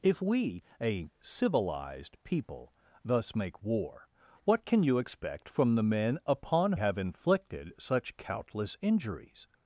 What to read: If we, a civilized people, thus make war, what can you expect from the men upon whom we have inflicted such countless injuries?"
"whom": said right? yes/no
no